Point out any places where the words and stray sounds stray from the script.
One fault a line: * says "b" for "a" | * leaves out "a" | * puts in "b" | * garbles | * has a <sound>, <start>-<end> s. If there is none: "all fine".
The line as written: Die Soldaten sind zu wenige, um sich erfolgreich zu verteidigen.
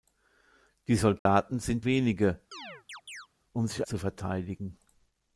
* has a dropout, 1.2-1.3 s
* leaves out "zu"
* has a chirp, 2.5-3.3 s
* leaves out "erfolgreich"